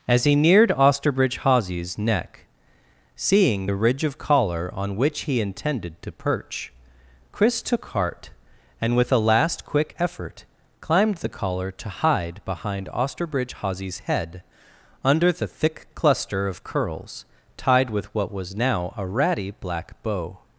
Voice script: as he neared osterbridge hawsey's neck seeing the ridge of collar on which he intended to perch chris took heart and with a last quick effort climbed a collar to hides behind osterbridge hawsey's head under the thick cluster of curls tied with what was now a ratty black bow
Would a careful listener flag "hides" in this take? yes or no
yes